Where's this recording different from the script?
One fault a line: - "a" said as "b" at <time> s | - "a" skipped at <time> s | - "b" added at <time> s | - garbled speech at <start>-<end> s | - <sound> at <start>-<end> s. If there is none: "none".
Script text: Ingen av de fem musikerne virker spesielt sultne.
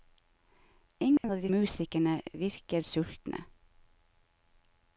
- dropout at 1.2-1.2 s
- "fem" skipped at 1.5 s
- "spesielt" skipped at 2.8 s